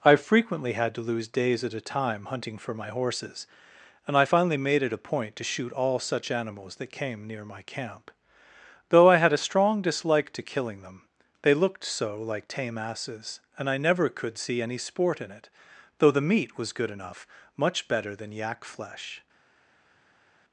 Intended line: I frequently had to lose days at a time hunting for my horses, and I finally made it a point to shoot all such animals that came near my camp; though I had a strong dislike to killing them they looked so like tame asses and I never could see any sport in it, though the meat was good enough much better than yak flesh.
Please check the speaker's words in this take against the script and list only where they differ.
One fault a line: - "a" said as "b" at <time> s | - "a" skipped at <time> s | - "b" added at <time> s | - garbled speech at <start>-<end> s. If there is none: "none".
none